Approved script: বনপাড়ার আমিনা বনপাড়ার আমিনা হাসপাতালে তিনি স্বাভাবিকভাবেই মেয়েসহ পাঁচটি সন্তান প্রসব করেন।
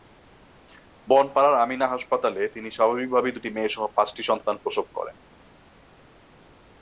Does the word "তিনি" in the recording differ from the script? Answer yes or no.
no